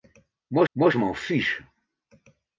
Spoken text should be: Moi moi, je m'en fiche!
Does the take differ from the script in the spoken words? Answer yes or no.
no